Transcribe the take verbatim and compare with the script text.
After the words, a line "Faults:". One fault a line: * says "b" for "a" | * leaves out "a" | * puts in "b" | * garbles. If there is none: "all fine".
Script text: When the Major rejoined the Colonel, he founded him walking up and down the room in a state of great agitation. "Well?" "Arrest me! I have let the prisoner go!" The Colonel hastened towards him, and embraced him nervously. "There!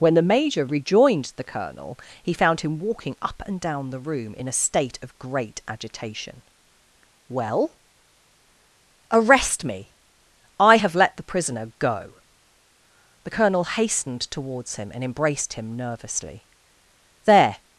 When the Major rejoined the Colonel, he found him walking up and down the room in a state of great agitation. "Well?" "Arrest me! I have let the prisoner go!" The Colonel hastened towards him, and embraced him nervously. "There!
Faults:
* says "found" for "founded"